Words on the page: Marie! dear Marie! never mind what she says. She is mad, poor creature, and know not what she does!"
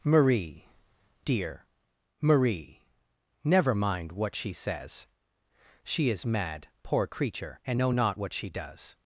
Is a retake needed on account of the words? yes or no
no